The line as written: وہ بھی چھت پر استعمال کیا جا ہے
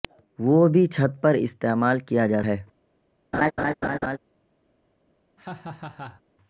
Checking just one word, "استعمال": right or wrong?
right